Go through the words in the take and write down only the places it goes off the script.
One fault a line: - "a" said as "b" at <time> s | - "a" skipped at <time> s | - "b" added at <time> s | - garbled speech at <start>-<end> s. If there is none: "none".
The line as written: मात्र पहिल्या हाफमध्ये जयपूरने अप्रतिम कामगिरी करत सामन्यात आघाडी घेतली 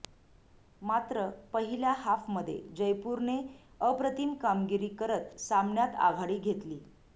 none